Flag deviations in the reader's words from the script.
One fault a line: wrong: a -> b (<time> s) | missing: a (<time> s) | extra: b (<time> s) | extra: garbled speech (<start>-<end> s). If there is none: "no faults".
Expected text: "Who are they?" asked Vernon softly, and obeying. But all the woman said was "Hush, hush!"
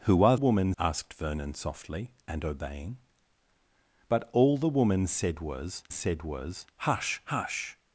wrong: they -> woman (0.3 s)
extra: said was (5.9 s)